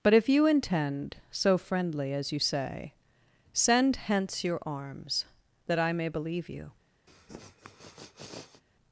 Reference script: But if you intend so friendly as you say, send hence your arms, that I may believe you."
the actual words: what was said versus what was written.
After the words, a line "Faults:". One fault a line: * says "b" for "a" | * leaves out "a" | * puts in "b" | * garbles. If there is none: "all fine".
But if you intend so friendly as you say, send hence your arms, that I may believe you."
Faults:
all fine